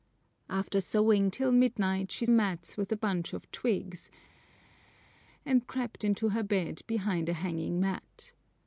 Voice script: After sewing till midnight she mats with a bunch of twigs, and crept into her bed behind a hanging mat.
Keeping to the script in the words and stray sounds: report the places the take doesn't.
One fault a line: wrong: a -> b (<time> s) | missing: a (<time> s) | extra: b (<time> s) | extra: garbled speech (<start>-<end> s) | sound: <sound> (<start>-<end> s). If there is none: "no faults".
no faults